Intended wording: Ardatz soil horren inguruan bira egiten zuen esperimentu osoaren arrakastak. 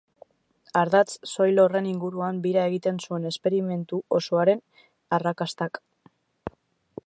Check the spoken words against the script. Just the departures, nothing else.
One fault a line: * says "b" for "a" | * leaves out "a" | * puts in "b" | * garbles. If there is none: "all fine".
all fine